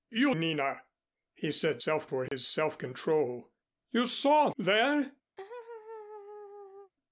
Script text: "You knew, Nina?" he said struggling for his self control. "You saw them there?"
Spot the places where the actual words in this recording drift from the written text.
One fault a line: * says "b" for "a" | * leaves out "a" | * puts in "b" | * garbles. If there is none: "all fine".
* leaves out "knew"
* says "self" for "struggling"
* leaves out "them"